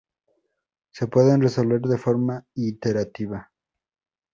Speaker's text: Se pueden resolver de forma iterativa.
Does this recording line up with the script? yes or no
yes